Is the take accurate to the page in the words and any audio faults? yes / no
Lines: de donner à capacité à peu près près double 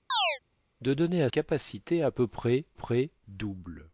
no